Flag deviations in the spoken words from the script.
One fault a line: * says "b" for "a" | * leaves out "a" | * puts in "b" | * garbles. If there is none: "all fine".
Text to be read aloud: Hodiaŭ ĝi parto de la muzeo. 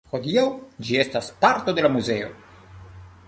* puts in "estas"